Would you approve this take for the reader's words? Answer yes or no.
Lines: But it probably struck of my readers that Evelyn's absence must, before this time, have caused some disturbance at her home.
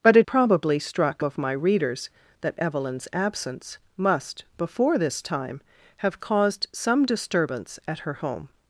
yes